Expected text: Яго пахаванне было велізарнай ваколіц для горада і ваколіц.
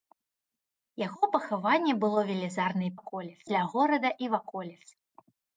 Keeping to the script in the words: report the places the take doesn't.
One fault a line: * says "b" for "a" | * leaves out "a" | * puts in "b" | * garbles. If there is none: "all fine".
all fine